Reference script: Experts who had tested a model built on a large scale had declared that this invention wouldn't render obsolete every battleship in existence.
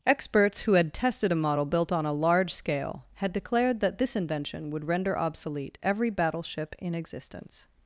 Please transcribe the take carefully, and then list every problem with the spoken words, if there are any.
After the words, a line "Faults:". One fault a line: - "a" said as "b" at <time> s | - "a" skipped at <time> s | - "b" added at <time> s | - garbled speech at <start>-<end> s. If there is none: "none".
Experts who had tested a model built on a large scale had declared that this invention would render obsolete every battleship in existence.
Faults:
- "wouldn't" said as "would" at 4.7 s